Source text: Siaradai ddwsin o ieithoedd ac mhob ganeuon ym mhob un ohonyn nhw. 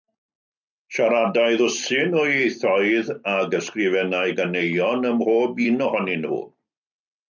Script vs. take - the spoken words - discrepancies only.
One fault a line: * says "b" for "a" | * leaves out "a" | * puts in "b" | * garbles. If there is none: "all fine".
* says "ysgrifennai" for "mhob"